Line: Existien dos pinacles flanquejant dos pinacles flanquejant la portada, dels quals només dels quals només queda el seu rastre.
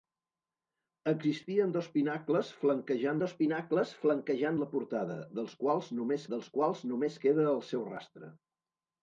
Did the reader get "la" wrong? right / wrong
right